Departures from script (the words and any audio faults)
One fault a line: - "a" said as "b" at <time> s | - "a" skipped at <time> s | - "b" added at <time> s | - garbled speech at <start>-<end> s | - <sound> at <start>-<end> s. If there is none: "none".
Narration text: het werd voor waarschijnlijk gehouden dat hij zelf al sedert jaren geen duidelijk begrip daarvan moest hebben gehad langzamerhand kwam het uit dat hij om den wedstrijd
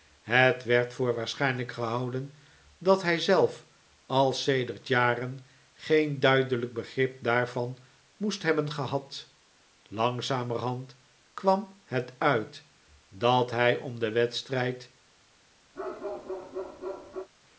- bark at 15.7-17.3 s